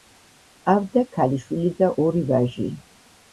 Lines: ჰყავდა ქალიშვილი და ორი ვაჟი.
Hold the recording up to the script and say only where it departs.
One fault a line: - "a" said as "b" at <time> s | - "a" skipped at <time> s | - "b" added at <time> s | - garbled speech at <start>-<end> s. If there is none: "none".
none